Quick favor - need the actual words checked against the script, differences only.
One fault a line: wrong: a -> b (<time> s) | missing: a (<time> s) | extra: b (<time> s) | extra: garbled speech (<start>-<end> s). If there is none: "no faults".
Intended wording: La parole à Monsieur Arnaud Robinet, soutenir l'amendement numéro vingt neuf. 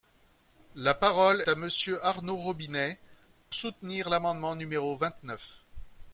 no faults